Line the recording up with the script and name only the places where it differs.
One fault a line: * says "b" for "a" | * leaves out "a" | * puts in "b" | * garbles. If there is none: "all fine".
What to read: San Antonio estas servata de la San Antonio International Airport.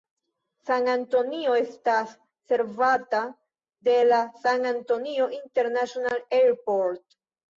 all fine